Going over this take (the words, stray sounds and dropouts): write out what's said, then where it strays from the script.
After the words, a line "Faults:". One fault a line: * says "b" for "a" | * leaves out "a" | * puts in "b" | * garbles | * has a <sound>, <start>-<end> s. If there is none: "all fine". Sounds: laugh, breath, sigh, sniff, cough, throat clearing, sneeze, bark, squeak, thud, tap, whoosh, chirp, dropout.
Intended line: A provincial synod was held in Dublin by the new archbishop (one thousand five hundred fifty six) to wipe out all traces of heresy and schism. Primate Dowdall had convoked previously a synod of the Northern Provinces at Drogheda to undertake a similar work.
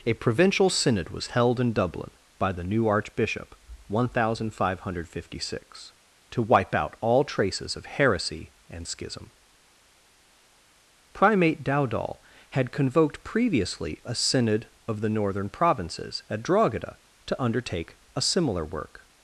A provincial synod was held in Dublin by the new archbishop (one thousand five hundred fifty six) to wipe out all traces of heresy and schism. Primate Dowdall had convoked previously a synod of the Northern Provinces at Drogheda to undertake a similar work.
Faults:
all fine